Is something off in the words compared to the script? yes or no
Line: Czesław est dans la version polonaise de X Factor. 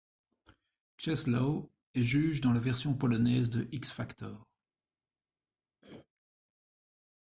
yes